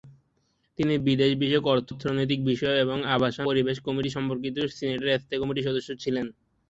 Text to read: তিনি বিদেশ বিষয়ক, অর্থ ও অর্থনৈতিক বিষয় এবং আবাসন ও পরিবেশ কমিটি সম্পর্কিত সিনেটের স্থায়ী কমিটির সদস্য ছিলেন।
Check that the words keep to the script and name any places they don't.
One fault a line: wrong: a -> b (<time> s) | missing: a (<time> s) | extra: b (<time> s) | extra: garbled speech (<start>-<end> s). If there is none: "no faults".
missing: ও (1.9 s)
missing: ও (3.5 s)